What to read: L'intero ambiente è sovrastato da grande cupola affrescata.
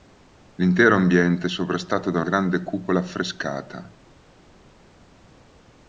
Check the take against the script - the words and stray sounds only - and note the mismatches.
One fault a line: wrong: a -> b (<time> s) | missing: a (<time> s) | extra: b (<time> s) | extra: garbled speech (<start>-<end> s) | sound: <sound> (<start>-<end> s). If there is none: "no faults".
no faults